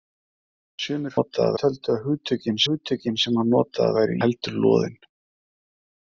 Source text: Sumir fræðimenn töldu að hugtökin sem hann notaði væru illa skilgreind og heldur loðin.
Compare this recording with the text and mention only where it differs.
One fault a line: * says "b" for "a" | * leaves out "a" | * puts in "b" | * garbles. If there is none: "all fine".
* says "notaði" for "fræðimenn"
* puts in "hugtökin"
* leaves out "illa skilgreind og"